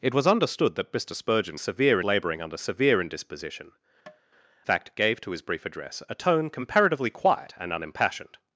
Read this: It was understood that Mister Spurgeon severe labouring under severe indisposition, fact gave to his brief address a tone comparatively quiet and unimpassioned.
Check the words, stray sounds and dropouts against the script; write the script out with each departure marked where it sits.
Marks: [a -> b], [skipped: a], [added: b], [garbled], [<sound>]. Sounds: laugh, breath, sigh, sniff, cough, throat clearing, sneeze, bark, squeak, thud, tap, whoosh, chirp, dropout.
It was understood that Mister Spurgeon severe labouring under severe indisposition, [tap] fact gave to his brief address a tone comparatively quiet and unimpassioned.